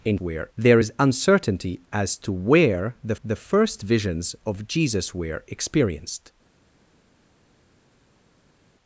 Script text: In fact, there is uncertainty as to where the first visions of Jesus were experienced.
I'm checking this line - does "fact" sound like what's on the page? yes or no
no